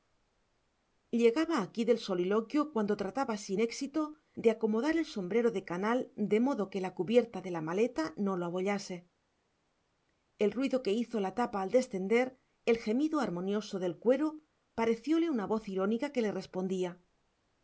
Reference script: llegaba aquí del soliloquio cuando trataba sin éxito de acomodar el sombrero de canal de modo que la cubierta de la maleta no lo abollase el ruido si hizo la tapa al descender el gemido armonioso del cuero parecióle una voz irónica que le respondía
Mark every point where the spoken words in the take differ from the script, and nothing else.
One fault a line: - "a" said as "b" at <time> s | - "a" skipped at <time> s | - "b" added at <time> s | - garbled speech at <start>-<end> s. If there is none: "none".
- "si" said as "que" at 10.8 s